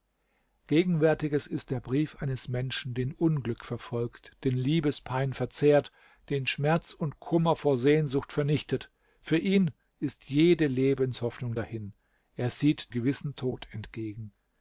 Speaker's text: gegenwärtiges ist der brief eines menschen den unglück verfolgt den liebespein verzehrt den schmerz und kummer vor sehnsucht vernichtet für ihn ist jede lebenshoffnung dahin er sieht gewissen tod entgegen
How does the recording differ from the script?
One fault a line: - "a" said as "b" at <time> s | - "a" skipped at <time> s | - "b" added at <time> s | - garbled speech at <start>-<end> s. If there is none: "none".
none